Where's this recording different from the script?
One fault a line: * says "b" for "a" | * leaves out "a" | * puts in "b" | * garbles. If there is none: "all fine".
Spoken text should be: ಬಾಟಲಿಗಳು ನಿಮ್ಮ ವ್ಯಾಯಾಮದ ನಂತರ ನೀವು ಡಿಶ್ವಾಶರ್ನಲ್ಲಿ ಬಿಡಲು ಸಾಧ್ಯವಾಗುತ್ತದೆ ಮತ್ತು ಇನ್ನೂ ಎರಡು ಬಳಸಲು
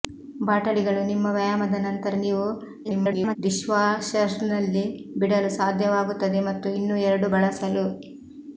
* garbles